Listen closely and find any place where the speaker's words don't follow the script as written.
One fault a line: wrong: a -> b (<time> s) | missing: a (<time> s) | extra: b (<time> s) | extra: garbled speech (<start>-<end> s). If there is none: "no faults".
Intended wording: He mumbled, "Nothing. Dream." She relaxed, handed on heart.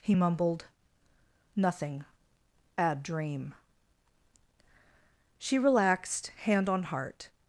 extra: Bad (2.8 s)
wrong: handed -> hand (6.4 s)